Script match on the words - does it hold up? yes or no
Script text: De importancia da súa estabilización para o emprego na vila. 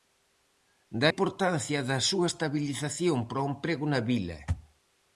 yes